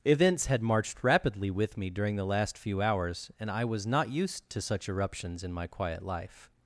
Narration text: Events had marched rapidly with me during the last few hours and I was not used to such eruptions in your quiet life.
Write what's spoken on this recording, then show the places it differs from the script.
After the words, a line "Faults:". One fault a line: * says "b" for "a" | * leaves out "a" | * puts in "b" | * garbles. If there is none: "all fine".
Events had marched rapidly with me during the last few hours and I was not used to such eruptions in my quiet life.
Faults:
* says "my" for "your"